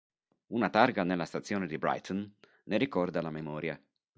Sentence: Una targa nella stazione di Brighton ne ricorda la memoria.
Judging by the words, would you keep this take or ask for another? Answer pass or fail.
pass